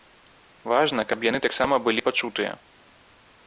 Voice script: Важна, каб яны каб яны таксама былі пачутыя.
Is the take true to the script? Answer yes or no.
no